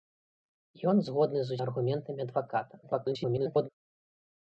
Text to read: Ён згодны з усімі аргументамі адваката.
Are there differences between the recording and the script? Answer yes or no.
yes